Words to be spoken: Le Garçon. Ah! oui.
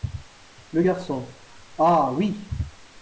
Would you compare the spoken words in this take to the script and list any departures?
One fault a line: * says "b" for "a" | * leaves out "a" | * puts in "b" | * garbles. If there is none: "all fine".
all fine